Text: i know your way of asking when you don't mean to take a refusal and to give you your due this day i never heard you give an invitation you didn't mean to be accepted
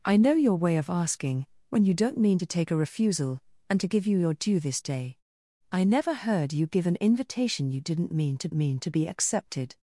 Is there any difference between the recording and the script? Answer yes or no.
yes